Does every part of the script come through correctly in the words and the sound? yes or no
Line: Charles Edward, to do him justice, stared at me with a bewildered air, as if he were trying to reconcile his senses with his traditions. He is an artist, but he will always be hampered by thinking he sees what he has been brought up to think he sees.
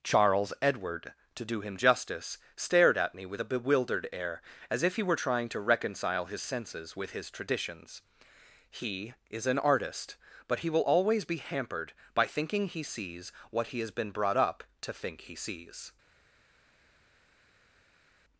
yes